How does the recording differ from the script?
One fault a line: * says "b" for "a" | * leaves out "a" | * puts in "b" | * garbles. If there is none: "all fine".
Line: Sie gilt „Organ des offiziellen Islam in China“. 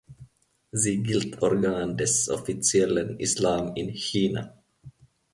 all fine